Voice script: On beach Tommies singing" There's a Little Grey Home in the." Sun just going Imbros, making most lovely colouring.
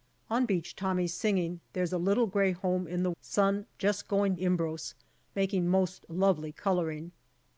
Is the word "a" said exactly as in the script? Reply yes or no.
yes